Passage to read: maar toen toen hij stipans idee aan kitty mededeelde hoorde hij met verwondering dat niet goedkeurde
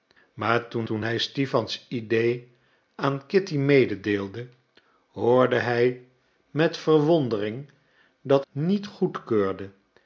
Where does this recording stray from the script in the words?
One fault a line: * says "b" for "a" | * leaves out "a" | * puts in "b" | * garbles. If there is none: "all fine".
all fine